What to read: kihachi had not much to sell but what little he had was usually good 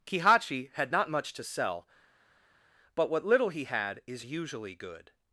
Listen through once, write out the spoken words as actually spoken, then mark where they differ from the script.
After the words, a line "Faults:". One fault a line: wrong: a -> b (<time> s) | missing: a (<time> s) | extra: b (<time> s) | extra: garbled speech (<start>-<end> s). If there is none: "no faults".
kihachi had not much to sell but what little he had is usually good
Faults:
wrong: was -> is (4.1 s)